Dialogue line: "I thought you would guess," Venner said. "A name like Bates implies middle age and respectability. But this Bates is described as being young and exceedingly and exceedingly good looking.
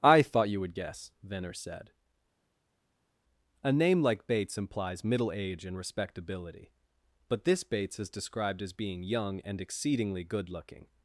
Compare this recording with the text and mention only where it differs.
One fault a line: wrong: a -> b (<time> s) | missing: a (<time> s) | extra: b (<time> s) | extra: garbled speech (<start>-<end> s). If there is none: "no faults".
missing: and exceedingly (10.2 s)